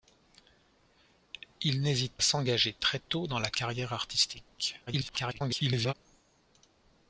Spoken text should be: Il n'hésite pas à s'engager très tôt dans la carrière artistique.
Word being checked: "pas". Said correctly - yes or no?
no